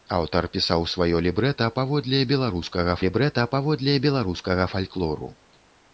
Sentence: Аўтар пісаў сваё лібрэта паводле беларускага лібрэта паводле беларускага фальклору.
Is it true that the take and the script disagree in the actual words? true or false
false